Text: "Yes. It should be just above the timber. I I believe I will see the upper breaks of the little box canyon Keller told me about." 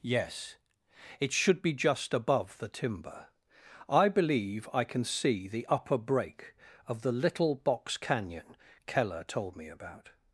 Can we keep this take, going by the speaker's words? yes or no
no